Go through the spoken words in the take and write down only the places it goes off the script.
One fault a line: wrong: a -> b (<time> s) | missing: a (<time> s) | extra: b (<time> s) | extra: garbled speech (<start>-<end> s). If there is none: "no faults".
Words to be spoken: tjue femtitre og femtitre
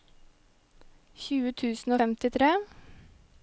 wrong: femtitre -> tusen (1.6 s)